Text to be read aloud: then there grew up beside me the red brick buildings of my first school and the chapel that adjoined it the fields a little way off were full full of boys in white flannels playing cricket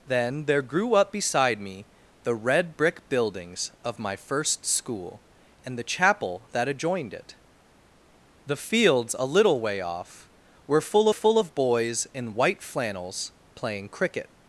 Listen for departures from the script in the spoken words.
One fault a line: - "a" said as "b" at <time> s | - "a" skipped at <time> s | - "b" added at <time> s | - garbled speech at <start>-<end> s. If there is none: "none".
none